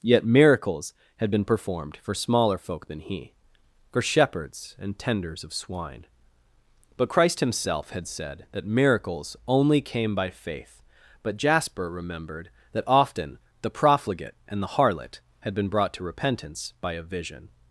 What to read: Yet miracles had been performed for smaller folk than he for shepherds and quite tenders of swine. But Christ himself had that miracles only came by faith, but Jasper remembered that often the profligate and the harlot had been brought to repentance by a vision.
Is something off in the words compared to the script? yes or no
yes